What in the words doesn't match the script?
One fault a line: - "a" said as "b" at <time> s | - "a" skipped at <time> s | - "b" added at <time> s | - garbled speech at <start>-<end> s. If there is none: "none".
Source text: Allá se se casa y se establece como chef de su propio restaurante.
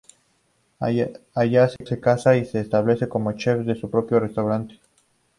none